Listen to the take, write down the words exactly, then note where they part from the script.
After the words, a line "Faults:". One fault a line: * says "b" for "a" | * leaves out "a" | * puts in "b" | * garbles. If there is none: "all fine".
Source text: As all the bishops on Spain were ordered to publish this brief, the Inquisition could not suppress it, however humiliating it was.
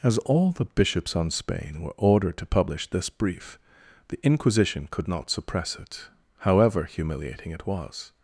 As all the bishops on Spain were ordered to publish this brief, the Inquisition could not suppress it, however humiliating it was.
Faults:
all fine